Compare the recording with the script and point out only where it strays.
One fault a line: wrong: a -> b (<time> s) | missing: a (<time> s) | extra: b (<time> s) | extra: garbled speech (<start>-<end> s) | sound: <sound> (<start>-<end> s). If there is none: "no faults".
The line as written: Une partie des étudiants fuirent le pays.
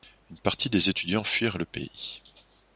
no faults